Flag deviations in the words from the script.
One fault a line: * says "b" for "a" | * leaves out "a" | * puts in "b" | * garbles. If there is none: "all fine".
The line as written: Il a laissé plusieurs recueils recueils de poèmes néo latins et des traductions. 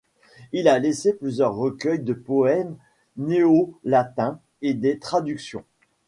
* leaves out "recueils"